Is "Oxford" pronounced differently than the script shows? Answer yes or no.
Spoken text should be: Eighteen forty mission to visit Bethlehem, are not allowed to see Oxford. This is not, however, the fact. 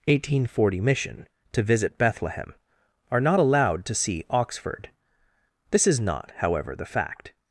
no